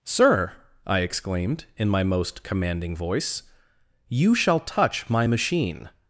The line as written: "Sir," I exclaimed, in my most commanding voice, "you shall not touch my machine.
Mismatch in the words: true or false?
true